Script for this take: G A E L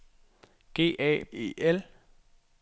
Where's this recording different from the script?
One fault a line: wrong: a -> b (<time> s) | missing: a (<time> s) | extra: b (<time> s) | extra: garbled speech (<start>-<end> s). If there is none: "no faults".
no faults